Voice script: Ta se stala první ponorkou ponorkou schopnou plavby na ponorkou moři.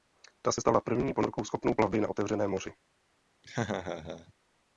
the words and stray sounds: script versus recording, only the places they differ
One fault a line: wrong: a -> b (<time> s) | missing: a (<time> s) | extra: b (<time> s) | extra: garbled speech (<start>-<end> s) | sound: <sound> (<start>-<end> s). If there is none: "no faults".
missing: ponorkou (1.4 s)
wrong: ponorkou -> otevřeném (2.1 s)
sound: laugh (3.4-4.3 s)